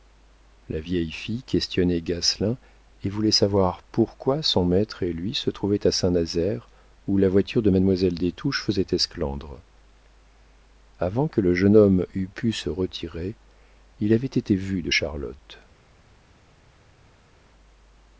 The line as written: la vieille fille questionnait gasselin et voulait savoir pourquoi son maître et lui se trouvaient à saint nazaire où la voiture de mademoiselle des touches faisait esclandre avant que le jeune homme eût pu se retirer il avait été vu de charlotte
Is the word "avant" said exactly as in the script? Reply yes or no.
yes